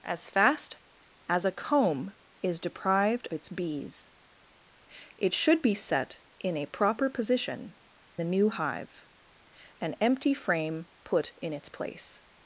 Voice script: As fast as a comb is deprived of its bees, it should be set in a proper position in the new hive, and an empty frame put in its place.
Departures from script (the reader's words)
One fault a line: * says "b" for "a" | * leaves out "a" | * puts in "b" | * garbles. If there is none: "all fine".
* leaves out "of"
* leaves out "in"
* leaves out "and"